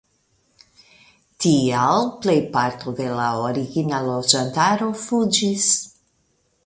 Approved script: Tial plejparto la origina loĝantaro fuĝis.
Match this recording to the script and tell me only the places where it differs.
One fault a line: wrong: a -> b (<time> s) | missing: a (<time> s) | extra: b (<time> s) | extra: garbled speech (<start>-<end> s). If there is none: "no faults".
extra: de (3.0 s)